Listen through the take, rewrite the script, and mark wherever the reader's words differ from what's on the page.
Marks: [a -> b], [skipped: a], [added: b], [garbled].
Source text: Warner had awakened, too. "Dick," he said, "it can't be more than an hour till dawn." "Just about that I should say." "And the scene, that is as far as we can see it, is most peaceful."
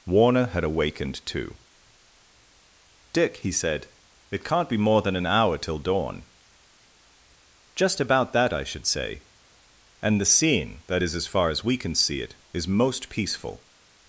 Warner had awakened, too. "Dick," he said, "it can't be more than an hour till dawn." "Just about that I should say." "And the scene, that is as far as we can see it, is most peaceful."